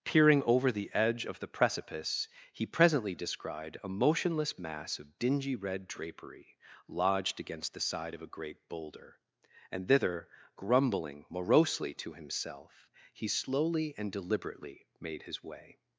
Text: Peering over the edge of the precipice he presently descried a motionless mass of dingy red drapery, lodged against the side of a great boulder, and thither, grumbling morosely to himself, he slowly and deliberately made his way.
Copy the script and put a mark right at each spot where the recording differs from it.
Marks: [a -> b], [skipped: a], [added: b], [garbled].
Peering over the edge of the precipice he presently descried a motionless mass of dingy red drapery, lodged against the side of a great boulder, and thither, grumbling morosely to himself, he slowly and deliberately made his way.